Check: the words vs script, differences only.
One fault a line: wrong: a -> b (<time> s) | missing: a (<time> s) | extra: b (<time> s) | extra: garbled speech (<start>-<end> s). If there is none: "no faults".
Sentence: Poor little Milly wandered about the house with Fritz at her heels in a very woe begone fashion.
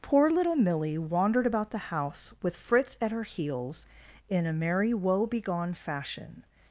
wrong: very -> merry (4.5 s)